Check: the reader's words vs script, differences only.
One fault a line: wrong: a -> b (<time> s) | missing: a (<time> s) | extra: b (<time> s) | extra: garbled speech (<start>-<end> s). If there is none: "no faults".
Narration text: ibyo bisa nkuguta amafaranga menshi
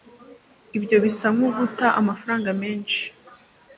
no faults